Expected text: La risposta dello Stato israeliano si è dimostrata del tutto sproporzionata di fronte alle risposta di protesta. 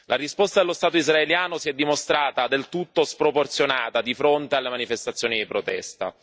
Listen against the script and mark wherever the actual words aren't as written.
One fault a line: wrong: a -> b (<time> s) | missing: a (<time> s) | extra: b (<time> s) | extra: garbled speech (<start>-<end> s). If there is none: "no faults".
wrong: risposta -> manifestazioni (4.7 s)